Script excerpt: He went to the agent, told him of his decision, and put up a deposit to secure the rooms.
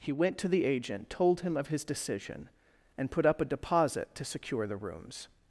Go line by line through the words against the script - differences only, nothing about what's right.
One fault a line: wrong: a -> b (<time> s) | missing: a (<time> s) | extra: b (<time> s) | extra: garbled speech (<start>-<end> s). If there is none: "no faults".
no faults